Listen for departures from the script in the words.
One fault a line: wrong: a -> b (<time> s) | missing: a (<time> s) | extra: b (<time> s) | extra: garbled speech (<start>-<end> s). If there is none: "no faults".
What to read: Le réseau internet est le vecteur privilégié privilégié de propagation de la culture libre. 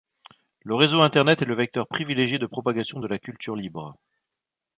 missing: privilégié (2.4 s)